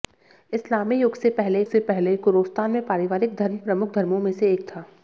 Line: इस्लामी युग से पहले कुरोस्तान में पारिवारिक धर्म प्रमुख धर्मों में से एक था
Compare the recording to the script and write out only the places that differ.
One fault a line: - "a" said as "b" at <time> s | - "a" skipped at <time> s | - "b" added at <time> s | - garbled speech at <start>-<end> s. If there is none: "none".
- "से पहले" added at 1.6 s